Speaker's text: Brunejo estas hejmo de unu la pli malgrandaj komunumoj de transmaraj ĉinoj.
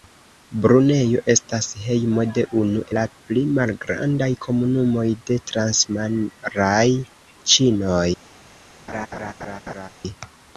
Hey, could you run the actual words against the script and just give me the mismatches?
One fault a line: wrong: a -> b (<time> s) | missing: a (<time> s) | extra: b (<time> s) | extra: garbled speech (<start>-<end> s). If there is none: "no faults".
no faults